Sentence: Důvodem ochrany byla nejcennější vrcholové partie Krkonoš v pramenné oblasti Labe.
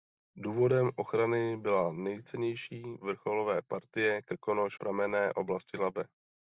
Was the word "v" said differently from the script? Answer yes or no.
yes